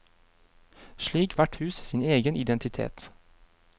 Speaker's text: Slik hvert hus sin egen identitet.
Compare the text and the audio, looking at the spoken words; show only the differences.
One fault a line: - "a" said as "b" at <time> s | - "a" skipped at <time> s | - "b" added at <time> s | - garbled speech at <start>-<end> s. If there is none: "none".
none